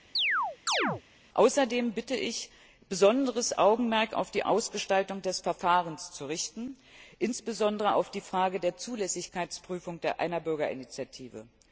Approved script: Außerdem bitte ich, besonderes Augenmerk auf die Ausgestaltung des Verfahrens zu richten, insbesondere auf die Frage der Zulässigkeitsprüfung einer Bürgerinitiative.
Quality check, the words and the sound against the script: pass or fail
fail